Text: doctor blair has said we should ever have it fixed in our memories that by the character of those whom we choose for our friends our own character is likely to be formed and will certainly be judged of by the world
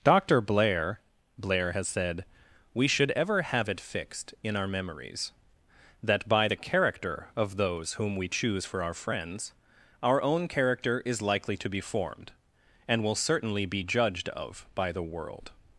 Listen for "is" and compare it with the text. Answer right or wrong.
right